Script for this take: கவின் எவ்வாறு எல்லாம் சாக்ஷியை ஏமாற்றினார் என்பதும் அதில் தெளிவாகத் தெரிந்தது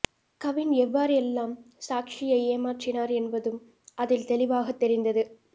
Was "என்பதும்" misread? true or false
false